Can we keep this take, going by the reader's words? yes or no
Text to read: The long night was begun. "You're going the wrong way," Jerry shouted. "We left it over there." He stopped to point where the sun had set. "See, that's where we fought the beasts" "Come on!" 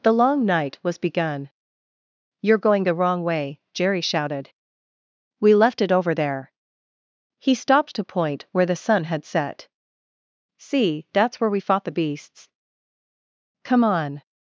yes